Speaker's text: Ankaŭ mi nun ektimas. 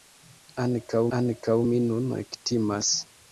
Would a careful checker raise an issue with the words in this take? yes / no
yes